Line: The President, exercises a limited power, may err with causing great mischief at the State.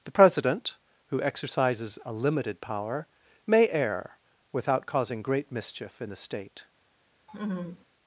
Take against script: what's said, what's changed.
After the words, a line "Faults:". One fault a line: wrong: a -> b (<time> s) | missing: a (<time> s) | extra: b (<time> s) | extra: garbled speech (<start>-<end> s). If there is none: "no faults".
The President, who exercises a limited power, may err without causing great mischief in the State.
Faults:
extra: who (1.1 s)
wrong: with -> without (4.5 s)
wrong: at -> in (6.0 s)